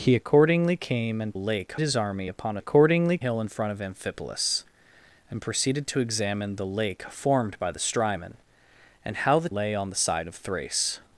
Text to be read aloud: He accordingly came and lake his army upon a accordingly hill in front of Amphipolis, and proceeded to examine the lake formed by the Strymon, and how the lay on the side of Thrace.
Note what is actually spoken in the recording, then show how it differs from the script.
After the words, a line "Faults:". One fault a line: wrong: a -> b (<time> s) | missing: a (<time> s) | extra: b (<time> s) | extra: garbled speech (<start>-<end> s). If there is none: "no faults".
He accordingly came and lake his army upon a accordingly hill in front of Amphipolis, and proceeded to examine the lake formed by the Strymon, and how the lay on the side of Thrace.
Faults:
no faults